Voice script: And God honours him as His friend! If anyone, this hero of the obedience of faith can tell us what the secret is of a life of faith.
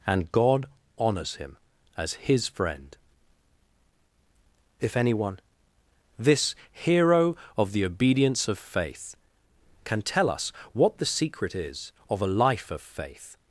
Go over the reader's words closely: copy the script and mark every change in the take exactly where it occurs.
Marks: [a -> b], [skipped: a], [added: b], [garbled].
And God honours him as His friend! If anyone, this hero of the obedience of faith can tell us what the secret is of a life of faith.